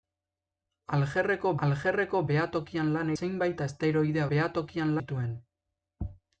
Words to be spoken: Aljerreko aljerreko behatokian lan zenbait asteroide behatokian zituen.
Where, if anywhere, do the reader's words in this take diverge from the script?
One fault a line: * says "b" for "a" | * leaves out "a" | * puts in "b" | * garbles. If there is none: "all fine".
all fine